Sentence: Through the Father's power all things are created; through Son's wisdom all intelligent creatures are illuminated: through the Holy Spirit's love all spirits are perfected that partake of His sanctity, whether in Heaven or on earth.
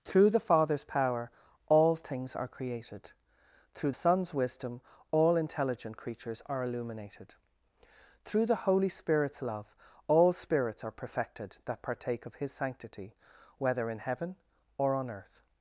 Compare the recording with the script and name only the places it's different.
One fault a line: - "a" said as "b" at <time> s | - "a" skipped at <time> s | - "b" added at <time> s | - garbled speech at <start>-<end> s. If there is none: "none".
none